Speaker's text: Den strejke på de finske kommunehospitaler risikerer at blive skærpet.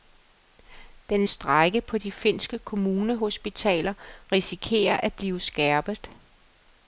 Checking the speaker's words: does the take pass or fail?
pass